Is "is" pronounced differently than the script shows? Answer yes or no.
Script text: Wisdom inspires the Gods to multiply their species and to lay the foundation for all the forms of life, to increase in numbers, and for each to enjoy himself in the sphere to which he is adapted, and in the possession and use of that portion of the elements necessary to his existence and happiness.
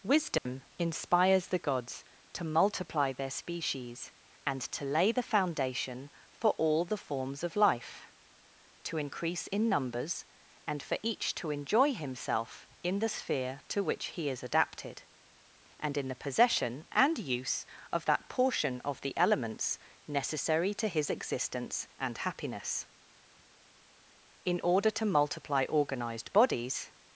no